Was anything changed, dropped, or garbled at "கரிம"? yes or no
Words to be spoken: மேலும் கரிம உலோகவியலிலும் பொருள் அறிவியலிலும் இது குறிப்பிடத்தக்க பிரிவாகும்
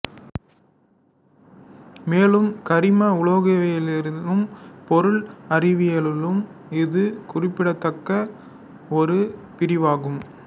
no